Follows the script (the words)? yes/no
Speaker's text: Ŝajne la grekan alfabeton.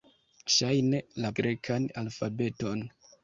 yes